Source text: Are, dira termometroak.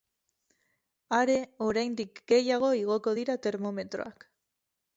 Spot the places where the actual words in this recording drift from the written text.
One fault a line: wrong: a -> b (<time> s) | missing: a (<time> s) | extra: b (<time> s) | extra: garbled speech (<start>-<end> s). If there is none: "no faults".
extra: oraindik gehiago igoko (1.6 s)